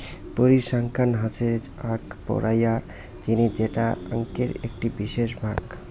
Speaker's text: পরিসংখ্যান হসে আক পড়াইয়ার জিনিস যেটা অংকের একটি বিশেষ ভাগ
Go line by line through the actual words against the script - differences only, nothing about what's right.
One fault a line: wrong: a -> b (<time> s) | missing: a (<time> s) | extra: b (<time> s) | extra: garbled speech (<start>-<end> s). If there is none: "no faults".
no faults